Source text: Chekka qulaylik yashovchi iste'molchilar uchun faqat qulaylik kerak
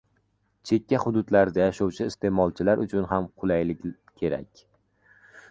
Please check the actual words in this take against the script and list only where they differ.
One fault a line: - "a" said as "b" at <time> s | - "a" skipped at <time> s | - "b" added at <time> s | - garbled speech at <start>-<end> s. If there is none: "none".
- "qulaylik" said as "hududlarda" at 1.0 s
- "faqat" said as "ham" at 3.1 s